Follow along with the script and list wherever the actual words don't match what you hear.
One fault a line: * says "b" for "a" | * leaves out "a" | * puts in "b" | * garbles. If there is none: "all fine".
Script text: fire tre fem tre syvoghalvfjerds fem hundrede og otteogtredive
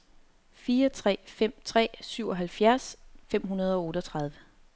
all fine